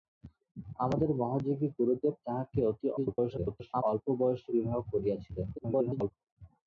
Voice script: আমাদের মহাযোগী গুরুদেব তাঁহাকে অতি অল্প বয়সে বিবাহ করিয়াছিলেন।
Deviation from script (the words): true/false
true